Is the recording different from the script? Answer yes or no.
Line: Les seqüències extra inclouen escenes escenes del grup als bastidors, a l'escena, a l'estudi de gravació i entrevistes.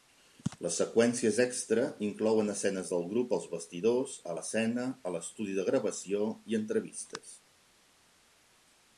yes